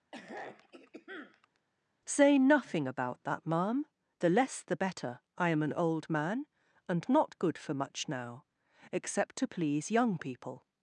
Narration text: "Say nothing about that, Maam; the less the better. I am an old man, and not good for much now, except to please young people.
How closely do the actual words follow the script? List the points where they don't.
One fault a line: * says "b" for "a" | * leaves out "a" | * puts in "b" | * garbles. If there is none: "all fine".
all fine